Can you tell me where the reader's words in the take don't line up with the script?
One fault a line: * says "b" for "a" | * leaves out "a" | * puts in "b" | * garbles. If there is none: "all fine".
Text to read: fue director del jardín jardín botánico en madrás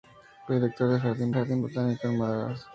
all fine